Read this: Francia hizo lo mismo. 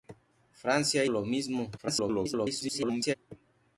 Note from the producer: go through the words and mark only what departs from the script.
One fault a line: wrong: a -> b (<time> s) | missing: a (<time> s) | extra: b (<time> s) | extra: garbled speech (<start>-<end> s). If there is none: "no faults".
missing: hizo (1.1 s)
extra: garbled speech (1.8-3.1 s)